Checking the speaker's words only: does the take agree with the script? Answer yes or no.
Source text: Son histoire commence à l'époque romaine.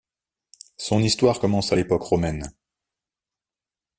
yes